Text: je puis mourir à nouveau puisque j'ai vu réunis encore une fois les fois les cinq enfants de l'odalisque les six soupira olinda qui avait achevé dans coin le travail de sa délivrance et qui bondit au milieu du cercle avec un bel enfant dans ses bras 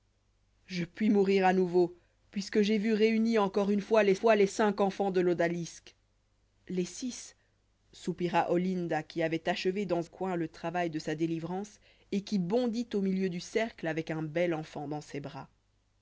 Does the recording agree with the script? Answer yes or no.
yes